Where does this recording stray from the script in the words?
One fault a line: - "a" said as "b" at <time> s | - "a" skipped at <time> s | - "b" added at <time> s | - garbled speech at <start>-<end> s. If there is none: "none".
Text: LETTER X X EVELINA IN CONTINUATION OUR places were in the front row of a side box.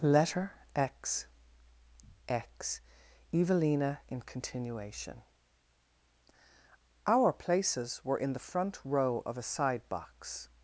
none